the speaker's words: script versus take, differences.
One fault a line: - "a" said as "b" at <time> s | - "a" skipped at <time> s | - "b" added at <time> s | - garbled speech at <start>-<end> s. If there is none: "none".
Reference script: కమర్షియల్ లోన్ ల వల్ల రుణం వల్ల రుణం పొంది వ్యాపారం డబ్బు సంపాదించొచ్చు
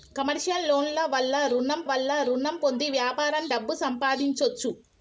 none